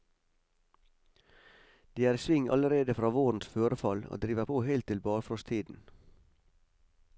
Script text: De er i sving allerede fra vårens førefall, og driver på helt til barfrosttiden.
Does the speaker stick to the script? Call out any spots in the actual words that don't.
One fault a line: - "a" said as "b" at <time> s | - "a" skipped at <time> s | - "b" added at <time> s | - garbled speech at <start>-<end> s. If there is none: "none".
none